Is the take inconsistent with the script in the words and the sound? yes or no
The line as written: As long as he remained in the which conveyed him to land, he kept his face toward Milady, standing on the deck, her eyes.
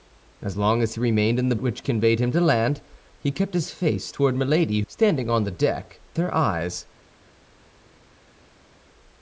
no